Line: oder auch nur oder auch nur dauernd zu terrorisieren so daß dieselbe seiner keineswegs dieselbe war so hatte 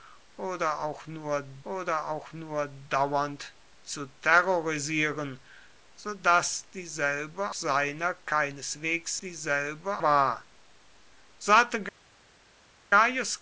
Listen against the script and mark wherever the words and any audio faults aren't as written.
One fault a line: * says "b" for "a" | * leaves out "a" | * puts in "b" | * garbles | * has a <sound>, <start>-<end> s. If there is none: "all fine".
all fine